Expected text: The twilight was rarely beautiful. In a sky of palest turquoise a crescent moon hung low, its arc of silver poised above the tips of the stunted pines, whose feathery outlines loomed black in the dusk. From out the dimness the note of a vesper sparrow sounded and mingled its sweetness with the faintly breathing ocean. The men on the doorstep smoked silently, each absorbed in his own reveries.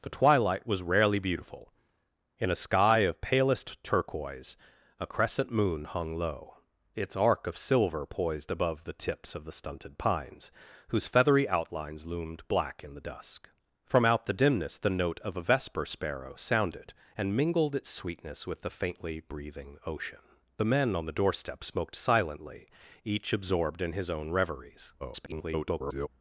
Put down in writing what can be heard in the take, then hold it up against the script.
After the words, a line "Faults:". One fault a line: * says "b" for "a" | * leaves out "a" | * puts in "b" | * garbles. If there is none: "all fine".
The twilight was rarely beautiful. In a sky of palest turquoise a crescent moon hung low, its arc of silver poised above the tips of the stunted pines, whose feathery outlines loomed black in the dusk. From out the dimness the note of a vesper sparrow sounded and mingled its sweetness with the faintly breathing ocean. The men on the doorstep smoked silently, each absorbed in his own reveries. [garbled]
Faults:
* garbles